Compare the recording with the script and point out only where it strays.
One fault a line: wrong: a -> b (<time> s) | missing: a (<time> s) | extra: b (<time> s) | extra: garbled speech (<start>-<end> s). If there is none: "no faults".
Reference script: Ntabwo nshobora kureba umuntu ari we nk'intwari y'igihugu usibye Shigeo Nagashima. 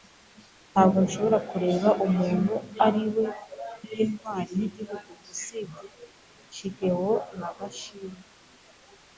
no faults